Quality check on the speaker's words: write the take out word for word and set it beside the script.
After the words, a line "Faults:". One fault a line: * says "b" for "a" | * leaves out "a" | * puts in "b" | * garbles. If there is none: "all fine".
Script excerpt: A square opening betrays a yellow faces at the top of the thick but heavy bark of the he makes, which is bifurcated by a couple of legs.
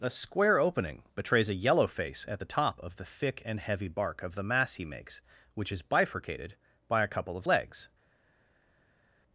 A square opening betrays a yellow face at the top of the thick and heavy bark of the mass he makes, which is bifurcated by a couple of legs.
Faults:
* says "face" for "faces"
* says "and" for "but"
* puts in "mass"